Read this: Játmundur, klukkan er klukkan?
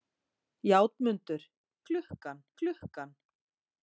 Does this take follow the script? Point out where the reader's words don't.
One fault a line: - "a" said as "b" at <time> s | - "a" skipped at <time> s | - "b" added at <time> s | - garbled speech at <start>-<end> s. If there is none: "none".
none